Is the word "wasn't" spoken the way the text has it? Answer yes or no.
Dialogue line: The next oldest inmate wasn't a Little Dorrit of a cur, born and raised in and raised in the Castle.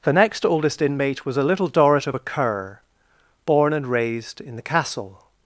no